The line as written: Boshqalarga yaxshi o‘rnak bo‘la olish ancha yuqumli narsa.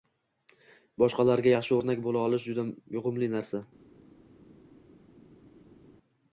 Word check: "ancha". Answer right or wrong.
wrong